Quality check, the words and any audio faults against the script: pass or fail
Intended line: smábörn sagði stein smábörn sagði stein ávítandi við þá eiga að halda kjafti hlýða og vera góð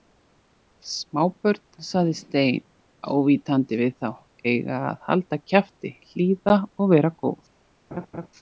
fail